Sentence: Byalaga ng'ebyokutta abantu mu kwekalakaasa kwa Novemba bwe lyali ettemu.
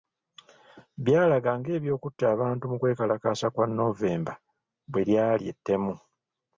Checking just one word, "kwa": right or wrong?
right